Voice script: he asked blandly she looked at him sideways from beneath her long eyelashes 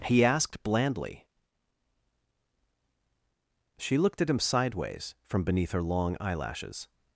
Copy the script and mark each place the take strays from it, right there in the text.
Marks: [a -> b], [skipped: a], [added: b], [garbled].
he asked blandly she looked at him sideways from beneath her long eyelashes